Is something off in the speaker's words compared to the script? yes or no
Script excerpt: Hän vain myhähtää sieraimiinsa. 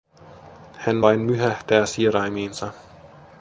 no